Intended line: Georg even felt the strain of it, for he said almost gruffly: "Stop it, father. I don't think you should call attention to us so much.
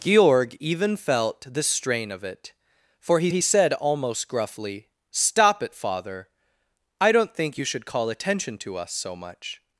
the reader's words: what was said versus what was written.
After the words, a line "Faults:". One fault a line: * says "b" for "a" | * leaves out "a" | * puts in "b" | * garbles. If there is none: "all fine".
Georg even felt the strain of it, for he he said almost gruffly: "Stop it, father. I don't think you should call attention to us so much.
Faults:
* puts in "he"